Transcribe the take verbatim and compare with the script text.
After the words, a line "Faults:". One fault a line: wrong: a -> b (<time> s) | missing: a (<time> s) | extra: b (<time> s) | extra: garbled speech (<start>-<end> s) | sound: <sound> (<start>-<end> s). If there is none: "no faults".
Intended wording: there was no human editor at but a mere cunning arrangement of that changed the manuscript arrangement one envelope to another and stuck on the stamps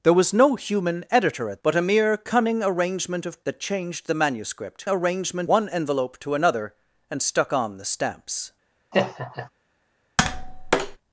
there was no human editor at but a mere cunning arrangement of that changed the manuscript arrangement one envelope to another and stuck on the stamps
Faults:
sound: laugh (8.9-9.5 s)
sound: tap (10.2-11.0 s)